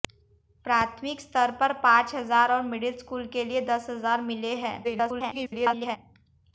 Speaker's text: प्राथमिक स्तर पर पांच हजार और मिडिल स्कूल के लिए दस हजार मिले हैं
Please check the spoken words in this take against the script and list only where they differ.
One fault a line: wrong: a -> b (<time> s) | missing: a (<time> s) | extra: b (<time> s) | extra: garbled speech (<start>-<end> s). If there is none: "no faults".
extra: garbled speech (4.8-6.0 s)